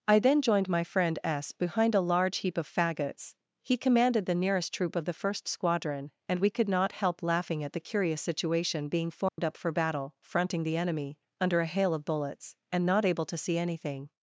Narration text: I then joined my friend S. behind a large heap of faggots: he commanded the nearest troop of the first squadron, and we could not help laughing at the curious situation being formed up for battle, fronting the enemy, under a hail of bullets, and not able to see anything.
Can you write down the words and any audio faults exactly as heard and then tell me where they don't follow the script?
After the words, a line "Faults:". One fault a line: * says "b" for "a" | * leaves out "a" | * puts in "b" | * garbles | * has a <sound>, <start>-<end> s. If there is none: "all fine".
I then joined my friend S. behind a large heap of faggots: he commanded the nearest troop of the first squadron, and we could not help laughing at the curious situation being formed up for battle, fronting the enemy, under a hail of bullets, and not able to see anything.
Faults:
* has a dropout, 9.3-9.4 s